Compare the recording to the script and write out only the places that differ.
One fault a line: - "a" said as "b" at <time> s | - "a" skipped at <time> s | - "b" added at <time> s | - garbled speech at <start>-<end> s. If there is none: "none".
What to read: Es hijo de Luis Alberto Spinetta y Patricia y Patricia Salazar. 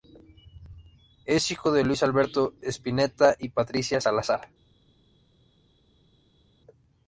- "y Patricia" skipped at 4.0 s